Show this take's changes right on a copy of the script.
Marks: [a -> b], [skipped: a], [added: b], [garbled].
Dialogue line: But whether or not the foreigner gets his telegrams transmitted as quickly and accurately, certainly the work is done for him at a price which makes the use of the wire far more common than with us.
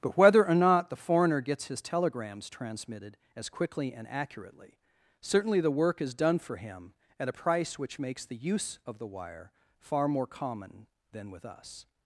But whether or not the foreigner gets his telegrams transmitted as quickly and accurately, certainly the work is done for him at a price which makes the use of the wire far more common than with us.